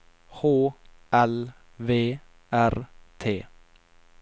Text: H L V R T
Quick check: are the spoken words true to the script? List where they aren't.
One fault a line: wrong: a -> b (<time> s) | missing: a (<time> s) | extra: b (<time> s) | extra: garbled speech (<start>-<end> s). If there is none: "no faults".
no faults